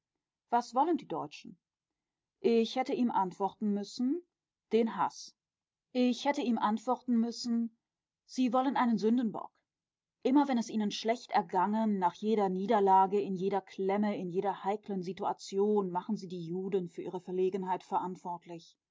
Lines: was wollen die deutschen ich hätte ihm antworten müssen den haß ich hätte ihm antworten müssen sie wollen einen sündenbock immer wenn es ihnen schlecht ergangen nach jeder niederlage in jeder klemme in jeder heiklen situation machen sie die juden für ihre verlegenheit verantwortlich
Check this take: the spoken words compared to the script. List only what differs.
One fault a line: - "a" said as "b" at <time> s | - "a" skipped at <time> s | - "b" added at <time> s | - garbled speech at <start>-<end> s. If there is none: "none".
none